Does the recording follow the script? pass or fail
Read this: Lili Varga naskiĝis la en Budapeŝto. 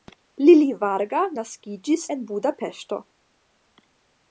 fail